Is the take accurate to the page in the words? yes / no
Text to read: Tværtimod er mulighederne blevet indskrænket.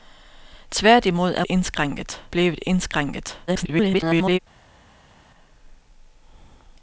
no